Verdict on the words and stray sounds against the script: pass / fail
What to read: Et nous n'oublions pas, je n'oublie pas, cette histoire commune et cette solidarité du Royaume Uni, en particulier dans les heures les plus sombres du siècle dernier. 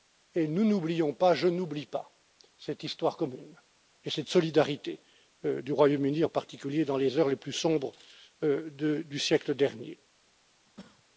fail